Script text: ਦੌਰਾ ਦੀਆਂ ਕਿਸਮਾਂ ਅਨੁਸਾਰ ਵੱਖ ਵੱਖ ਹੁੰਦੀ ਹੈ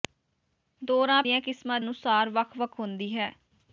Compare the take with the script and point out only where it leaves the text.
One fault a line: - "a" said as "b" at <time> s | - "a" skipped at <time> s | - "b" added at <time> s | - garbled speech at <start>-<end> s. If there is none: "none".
none